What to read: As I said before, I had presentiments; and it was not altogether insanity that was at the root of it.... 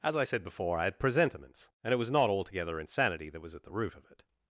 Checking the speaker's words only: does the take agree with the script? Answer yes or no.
yes